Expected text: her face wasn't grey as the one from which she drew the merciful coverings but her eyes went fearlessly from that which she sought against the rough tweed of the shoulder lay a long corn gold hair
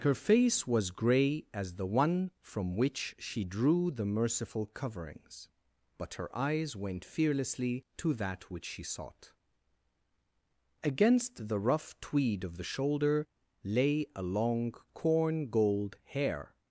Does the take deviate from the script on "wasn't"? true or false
true